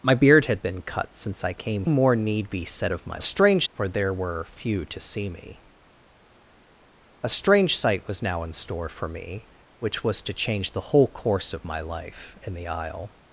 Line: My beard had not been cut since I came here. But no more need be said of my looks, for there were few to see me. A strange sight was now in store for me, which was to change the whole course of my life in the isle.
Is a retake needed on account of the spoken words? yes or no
yes